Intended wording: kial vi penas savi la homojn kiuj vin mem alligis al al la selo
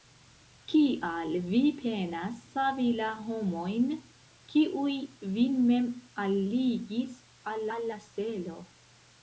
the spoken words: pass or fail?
pass